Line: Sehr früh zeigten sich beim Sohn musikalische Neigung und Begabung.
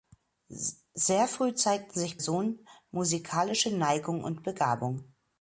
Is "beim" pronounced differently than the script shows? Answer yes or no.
yes